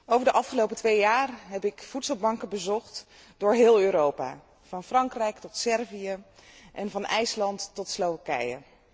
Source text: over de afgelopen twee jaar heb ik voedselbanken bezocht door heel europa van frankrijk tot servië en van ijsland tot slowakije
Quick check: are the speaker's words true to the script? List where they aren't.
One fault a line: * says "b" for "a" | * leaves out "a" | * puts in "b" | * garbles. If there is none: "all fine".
all fine